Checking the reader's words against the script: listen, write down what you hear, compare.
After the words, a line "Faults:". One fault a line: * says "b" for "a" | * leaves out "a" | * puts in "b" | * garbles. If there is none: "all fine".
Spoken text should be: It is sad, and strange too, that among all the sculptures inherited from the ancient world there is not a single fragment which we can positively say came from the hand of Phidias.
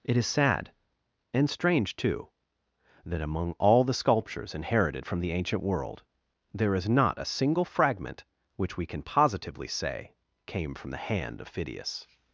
It is sad, and strange too, that among all the sculptures inherited from the ancient world there is not a single fragment which we can positively say came from the hand of Phidias.
Faults:
all fine